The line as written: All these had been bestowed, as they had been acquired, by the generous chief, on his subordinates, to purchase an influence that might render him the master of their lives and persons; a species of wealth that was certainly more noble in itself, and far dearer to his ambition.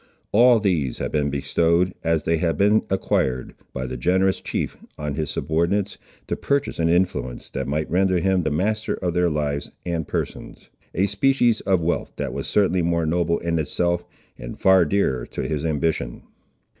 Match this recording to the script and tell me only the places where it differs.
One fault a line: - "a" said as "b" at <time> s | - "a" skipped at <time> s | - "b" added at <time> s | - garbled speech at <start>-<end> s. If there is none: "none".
none